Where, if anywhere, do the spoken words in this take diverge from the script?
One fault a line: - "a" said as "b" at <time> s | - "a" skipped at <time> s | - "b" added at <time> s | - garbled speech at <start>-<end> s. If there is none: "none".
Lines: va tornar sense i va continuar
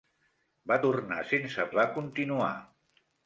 none